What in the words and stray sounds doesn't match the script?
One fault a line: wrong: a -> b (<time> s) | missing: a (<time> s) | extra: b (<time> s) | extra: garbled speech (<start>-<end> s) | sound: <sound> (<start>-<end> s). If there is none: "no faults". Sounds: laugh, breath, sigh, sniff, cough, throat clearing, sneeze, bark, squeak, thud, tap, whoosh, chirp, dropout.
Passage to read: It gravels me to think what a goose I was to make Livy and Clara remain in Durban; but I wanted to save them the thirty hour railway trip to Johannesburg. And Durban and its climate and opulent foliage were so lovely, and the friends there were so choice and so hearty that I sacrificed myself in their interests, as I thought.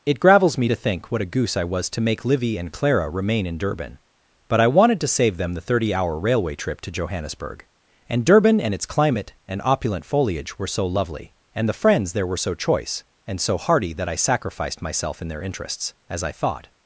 no faults